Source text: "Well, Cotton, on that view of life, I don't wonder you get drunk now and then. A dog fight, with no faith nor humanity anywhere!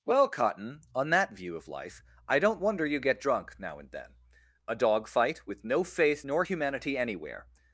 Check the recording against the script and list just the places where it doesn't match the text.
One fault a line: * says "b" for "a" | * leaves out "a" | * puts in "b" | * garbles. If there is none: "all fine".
all fine